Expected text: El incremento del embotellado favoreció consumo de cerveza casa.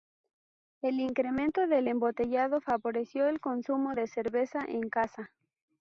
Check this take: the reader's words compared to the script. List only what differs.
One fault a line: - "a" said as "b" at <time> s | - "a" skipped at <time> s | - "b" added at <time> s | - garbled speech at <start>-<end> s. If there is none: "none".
- "el" added at 3.3 s
- "en" added at 4.7 s